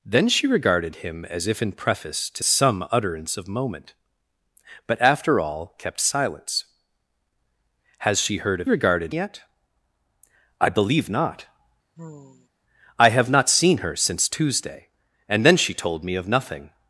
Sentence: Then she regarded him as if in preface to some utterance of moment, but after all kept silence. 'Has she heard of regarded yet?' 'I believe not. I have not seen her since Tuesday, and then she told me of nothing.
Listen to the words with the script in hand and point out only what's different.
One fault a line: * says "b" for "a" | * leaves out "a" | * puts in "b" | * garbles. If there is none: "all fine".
all fine